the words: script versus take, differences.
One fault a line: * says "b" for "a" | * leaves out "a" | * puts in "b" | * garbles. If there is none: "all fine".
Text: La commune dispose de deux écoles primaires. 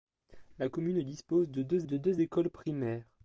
* puts in "de deux"